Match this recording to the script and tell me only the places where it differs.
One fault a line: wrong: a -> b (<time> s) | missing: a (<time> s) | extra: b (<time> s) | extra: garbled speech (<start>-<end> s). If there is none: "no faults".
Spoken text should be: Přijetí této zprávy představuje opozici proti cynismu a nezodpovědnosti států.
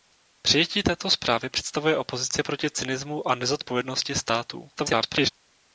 extra: garbled speech (4.7-5.3 s)